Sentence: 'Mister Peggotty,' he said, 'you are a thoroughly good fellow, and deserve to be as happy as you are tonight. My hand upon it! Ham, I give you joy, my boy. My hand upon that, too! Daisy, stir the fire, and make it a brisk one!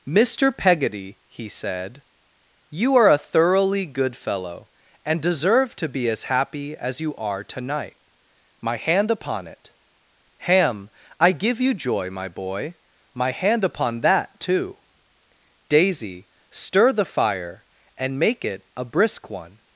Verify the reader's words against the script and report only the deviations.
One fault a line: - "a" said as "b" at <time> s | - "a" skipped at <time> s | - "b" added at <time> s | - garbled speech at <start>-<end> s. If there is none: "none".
none